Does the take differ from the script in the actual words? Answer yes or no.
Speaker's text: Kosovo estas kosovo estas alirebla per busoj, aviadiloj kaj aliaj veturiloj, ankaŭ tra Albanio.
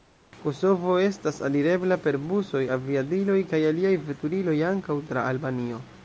yes